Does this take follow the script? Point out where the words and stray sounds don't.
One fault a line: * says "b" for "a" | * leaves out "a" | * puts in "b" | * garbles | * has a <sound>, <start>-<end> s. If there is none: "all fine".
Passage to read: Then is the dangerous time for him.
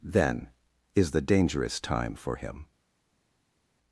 all fine